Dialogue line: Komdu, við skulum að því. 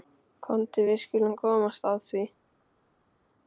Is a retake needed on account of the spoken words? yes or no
yes